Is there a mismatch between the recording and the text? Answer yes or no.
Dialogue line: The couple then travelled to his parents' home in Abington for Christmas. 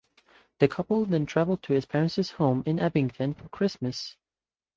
no